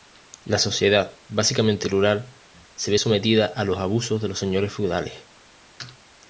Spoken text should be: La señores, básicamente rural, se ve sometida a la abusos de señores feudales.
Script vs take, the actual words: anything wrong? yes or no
yes